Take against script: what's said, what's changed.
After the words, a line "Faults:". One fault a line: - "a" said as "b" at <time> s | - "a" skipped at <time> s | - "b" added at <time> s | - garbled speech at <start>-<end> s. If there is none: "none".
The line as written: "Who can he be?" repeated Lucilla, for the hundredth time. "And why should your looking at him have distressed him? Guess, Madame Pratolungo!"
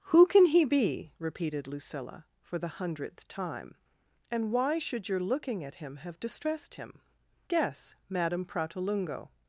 "Who can he be?" repeated Lucilla, for the hundredth time. "And why should your looking at him have distressed him? Guess, Madame Pratolungo!"
Faults:
none